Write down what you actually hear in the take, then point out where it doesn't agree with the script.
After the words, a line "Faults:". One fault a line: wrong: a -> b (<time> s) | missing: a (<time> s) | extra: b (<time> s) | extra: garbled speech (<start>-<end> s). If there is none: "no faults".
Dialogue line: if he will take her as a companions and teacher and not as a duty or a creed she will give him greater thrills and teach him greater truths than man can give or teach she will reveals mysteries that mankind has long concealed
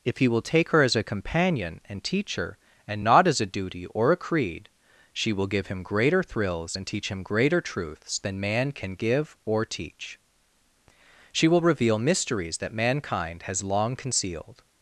if he will take her as a companion and teacher and not as a duty or a creed she will give him greater thrills and teach him greater truths than man can give or teach she will reveal mysteries that mankind has long concealed
Faults:
wrong: companions -> companion (1.0 s)
wrong: reveals -> reveal (11.6 s)